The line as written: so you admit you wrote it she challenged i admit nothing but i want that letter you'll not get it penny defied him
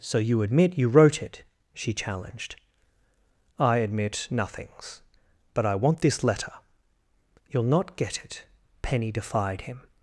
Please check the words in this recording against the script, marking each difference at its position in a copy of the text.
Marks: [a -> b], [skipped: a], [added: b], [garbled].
so you admit you wrote it she challenged i admit [nothing -> nothings] but i want [that -> this] letter you'll not get it penny defied him